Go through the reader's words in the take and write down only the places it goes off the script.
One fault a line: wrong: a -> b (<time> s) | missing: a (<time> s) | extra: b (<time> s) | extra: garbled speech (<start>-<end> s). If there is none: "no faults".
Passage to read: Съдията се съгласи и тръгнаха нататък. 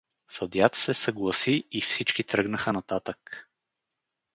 extra: всички (1.8 s)